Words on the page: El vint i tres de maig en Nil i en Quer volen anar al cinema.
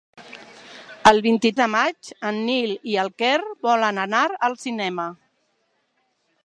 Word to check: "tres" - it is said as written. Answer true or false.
false